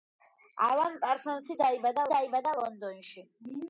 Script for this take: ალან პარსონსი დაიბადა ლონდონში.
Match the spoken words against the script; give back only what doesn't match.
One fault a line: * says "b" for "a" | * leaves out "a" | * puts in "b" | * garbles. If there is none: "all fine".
* puts in "დაიბადა"